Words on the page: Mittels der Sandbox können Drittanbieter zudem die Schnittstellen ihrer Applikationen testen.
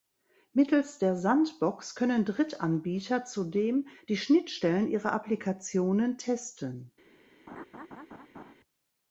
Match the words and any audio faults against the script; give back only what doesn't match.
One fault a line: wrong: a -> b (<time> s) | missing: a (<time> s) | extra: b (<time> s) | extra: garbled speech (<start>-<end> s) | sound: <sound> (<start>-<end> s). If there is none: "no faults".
sound: laugh (7.5-8.5 s)